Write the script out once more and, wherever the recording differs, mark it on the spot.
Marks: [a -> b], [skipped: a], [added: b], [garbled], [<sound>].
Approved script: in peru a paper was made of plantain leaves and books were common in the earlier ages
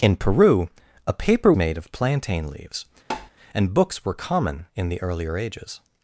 in peru a paper [skipped: was] made of plantain leaves [tap] and books were common in the earlier ages